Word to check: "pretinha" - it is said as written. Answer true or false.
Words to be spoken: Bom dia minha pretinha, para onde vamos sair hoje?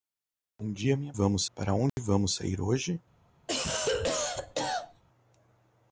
false